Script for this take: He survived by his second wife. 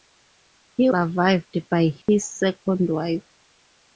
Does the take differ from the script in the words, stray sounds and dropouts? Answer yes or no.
yes